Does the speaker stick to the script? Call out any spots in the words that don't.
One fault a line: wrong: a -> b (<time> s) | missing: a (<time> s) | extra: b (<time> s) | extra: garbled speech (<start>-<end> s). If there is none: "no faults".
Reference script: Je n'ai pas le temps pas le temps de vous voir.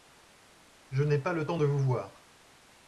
missing: pas le temps (1.6 s)